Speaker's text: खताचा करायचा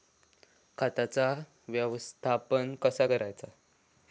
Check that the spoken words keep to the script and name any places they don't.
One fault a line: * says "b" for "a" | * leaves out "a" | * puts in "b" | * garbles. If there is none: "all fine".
* puts in "व्यवस्थापन कसा"